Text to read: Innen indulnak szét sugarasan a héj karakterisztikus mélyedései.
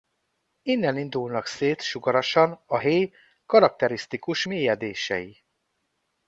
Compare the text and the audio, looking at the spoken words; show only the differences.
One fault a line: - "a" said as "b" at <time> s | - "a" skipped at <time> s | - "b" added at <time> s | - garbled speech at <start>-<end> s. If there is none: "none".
none